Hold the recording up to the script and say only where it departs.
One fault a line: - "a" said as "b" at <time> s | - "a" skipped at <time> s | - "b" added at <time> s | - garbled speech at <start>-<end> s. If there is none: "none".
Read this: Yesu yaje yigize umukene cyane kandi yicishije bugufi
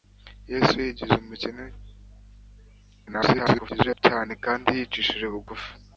- "yaje" skipped at 0.8 s
- garbled speech at 3.1-4.0 s